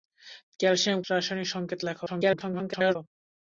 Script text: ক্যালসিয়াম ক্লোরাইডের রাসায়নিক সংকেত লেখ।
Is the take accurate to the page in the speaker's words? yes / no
no